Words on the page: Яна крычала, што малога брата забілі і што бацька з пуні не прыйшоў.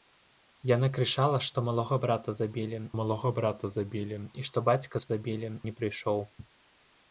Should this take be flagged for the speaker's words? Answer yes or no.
yes